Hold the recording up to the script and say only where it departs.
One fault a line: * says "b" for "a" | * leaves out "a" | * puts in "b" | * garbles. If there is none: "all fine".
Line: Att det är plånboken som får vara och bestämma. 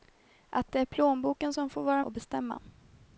all fine